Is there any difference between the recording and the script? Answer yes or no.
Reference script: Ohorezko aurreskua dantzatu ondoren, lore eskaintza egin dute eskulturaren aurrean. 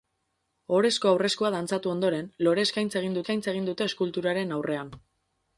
yes